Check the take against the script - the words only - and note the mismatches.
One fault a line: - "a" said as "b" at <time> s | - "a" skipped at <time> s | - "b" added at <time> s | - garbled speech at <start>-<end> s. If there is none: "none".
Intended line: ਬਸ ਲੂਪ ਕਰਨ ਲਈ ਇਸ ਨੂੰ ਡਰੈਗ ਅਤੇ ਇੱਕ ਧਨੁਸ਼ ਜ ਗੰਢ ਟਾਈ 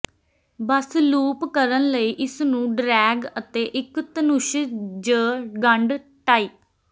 none